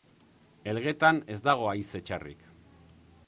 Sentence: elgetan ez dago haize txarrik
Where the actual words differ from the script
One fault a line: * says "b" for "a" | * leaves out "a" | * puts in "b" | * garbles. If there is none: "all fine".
all fine